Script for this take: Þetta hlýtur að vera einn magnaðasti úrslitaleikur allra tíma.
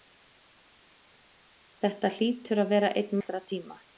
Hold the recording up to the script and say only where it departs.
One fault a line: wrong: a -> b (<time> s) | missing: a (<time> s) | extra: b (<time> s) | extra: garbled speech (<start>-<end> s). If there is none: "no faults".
missing: magnaðasti úrslitaleikur (3.1 s)